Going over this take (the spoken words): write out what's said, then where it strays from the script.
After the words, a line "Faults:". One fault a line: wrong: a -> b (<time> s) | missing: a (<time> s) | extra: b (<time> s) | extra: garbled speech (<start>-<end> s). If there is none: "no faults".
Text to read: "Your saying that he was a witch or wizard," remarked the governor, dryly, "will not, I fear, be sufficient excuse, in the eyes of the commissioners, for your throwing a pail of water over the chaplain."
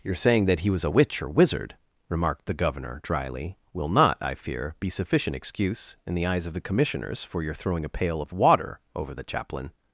"Your saying that he was a witch or wizard," remarked the governor, dryly, "will not, I fear, be sufficient excuse, in the eyes of the commissioners, for your throwing a pail of water over the chaplain."
Faults:
no faults